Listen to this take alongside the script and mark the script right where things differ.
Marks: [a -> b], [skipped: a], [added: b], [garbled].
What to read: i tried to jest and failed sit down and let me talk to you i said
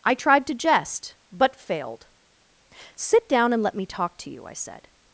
i tried to jest [and -> but] failed sit down and let me talk to you i said